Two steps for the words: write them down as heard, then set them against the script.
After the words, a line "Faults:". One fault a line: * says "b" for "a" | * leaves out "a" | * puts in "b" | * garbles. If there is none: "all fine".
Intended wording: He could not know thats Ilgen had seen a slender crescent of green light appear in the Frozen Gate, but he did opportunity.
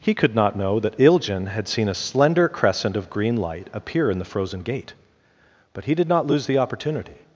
He could not know that Ilgen had seen a slender crescent of green light appear in the Frozen Gate, but he did not lose the opportunity.
Faults:
* says "that" for "thats"
* puts in "not lose the"